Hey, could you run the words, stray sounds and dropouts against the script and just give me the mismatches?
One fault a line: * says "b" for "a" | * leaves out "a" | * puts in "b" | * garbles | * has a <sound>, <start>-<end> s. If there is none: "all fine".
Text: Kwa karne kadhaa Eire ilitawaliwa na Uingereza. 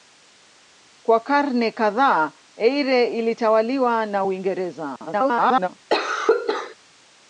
* garbles
* has a cough, 5.9-6.8 s